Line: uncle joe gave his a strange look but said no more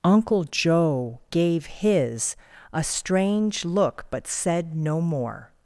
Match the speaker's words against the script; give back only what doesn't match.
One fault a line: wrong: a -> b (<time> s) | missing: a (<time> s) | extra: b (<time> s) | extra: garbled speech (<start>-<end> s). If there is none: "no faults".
no faults